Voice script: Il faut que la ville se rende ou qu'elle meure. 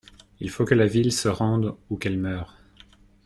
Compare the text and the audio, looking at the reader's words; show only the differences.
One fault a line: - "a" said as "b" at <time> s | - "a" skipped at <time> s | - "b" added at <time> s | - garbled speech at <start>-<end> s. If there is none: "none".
none